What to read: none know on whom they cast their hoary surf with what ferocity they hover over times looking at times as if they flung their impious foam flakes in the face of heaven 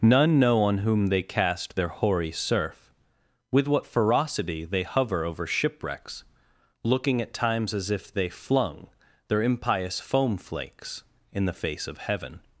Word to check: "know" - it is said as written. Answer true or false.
true